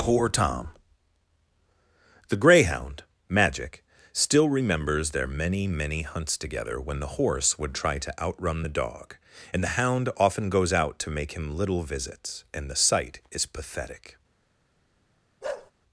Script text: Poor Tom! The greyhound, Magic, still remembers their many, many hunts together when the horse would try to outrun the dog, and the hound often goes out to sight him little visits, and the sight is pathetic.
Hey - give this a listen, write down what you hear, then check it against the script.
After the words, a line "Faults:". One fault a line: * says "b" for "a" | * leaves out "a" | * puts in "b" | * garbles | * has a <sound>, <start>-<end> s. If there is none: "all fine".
Poor Tom! The greyhound, Magic, still remembers their many, many hunts together when the horse would try to outrun the dog, and the hound often goes out to make him little visits, and the sight is pathetic.
Faults:
* says "make" for "sight"
* has a bark, 15.4-15.7 s